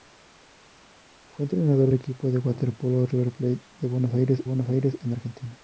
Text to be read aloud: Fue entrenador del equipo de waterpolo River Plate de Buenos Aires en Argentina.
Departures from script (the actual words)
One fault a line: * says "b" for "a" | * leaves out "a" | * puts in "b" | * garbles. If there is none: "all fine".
* leaves out "del"
* puts in "Buenos Aires"